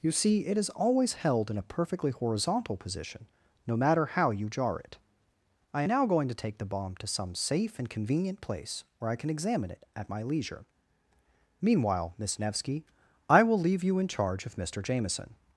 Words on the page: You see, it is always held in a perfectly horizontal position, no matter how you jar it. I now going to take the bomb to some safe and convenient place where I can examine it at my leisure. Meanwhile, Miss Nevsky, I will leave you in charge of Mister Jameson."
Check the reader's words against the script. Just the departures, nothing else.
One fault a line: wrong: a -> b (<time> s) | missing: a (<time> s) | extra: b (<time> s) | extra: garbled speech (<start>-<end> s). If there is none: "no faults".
no faults